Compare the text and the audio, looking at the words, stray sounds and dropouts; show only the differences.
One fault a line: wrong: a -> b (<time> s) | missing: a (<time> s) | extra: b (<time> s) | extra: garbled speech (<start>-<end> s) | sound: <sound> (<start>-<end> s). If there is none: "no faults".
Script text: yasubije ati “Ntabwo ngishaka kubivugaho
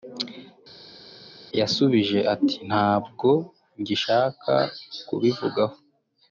no faults